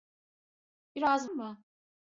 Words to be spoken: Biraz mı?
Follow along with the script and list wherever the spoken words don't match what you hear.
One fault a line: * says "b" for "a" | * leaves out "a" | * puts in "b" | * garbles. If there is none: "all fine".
all fine